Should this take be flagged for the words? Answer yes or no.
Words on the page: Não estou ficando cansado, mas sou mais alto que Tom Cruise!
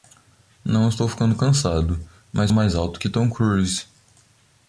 yes